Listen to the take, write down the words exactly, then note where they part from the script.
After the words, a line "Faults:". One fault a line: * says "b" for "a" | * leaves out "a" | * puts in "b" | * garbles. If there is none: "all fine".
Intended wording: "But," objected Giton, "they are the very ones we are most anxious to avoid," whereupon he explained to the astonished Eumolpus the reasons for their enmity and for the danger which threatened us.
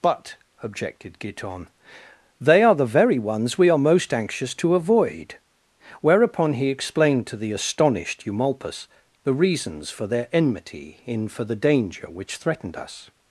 "But," objected Giton, "they are the very ones we are most anxious to avoid," whereupon he explained to the astonished Eumolpus the reasons for their enmity in for the danger which threatened us.
Faults:
* says "in" for "and"